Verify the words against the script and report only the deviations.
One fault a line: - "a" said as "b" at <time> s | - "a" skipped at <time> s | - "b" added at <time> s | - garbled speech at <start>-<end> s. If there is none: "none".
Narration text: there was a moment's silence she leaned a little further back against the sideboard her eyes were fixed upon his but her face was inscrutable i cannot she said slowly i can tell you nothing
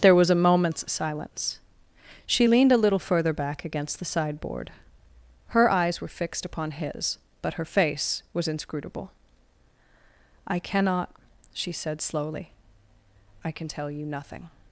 none